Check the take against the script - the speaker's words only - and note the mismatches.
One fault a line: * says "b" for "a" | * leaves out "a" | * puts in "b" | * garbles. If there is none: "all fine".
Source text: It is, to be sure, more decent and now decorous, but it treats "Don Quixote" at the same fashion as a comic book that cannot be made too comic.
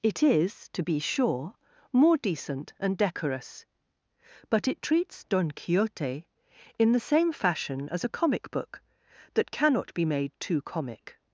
* leaves out "now"
* says "in" for "at"